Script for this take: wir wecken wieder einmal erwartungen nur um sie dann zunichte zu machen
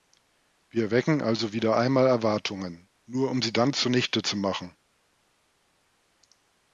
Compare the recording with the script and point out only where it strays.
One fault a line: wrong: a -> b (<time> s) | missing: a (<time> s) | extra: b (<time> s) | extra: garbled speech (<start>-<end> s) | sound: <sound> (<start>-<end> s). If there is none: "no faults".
extra: also (1.2 s)